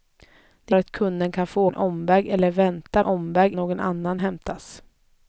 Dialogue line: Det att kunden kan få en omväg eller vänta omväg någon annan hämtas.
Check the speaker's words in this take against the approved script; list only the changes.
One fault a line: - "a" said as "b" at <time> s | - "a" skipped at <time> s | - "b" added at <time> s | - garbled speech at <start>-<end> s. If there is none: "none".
none